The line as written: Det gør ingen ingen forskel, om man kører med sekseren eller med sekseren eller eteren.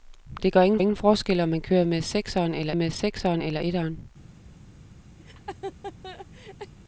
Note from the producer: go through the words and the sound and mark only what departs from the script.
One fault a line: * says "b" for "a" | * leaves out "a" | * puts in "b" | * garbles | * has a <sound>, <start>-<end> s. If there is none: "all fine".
* has a laugh, 5.2-6.7 s